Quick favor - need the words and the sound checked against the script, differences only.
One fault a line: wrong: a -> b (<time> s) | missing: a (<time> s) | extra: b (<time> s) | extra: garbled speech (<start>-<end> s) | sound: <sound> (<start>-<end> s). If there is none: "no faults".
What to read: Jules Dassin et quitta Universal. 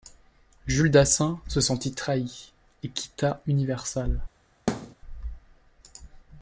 extra: se sentit trahi (1.5 s)
sound: thud (4.7-5.0 s)